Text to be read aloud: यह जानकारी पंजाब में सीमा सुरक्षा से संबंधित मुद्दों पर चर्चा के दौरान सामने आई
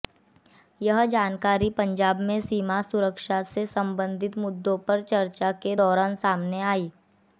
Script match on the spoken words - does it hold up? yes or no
yes